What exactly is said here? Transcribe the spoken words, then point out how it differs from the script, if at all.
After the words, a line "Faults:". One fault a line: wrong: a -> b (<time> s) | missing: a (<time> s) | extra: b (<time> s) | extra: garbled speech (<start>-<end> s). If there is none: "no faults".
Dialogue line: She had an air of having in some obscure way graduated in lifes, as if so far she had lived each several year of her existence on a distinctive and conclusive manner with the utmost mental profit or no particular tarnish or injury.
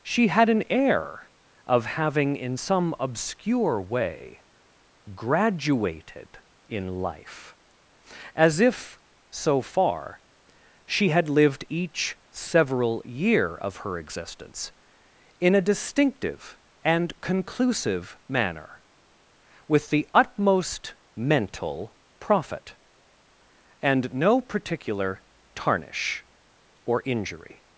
She had an air of having in some obscure way graduated in life, as if so far she had lived each several year of her existence in a distinctive and conclusive manner with the utmost mental profit and no particular tarnish or injury.
Faults:
wrong: lifes -> life (7.0 s)
wrong: on -> in (15.4 s)
wrong: or -> and (23.8 s)